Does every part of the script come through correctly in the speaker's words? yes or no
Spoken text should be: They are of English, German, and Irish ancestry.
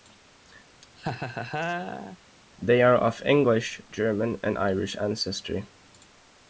yes